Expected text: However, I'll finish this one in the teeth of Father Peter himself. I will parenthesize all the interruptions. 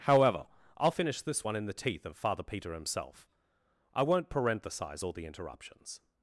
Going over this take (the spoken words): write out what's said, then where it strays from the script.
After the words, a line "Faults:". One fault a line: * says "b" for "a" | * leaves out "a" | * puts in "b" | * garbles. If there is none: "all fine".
However, I'll finish this one in the teeth of Father Peter himself. I won't parenthesize all the interruptions.
Faults:
* says "won't" for "will"